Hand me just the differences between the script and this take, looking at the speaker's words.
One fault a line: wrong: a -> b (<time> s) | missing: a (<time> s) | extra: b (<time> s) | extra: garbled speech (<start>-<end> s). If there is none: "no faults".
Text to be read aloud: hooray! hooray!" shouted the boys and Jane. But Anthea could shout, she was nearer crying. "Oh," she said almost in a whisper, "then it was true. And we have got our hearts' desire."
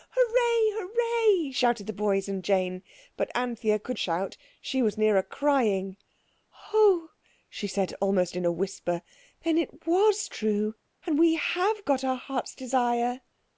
no faults